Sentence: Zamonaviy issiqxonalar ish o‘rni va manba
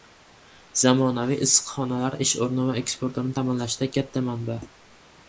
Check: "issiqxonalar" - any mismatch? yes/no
no